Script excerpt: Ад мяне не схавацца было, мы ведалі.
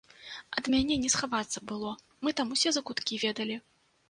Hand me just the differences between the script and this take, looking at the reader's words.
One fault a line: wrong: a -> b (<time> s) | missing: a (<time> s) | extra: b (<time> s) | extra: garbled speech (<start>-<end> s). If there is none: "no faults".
extra: там усе закуткі (2.4 s)